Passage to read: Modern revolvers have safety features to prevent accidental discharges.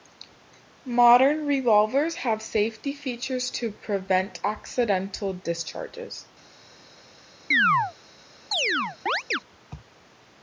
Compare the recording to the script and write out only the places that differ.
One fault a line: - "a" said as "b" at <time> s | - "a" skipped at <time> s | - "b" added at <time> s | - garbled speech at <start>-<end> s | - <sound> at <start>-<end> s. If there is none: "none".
- chirp at 7.5-7.9 s
- chirp at 8.5-9.4 s